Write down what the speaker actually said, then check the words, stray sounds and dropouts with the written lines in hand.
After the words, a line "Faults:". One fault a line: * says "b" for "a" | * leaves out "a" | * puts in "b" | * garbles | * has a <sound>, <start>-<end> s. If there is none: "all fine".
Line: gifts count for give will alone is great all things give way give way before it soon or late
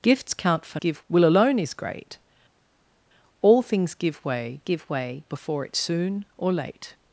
gifts count for give will alone is great all things give way give way before it soon or late
Faults:
all fine